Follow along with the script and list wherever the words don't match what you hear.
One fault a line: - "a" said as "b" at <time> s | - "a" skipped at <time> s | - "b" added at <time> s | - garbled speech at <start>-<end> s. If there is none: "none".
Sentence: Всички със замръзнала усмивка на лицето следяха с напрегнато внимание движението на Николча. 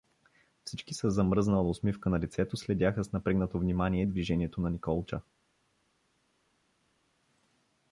none